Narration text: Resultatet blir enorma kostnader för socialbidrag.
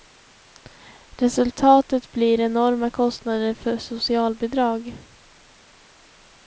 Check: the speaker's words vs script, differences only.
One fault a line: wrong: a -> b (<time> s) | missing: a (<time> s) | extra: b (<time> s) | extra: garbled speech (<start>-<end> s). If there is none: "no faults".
no faults